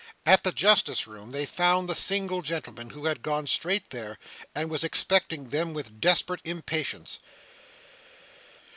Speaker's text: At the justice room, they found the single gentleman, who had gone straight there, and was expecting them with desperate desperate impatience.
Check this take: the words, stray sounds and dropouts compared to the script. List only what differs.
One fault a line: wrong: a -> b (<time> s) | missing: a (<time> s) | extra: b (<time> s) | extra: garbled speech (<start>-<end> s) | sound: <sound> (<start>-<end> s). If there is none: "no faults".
missing: desperate (6.4 s)